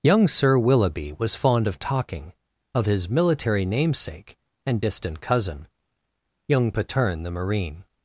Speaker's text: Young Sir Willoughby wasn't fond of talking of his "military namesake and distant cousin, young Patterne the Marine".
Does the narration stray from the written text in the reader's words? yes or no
yes